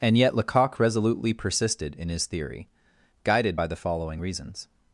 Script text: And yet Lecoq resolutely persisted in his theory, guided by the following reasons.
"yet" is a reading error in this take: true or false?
false